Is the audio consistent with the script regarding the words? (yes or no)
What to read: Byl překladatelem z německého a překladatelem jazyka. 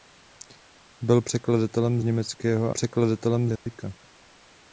yes